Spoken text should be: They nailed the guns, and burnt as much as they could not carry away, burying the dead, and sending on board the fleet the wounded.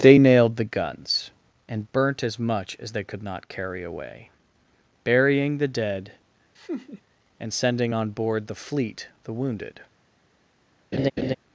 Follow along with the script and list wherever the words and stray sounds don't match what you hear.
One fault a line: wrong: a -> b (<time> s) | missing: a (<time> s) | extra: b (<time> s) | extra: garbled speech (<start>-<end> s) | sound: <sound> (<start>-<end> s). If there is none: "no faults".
sound: laugh (6.5-7.0 s)
sound: laugh (10.9-11.4 s)